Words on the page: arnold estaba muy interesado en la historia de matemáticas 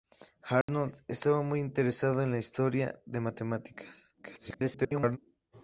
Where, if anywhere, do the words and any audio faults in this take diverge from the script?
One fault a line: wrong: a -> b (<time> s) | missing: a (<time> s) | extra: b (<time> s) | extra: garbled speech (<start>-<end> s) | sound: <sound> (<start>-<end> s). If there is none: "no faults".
sound: dropout (0.6-0.7 s)
extra: garbled speech (4.2-5.2 s)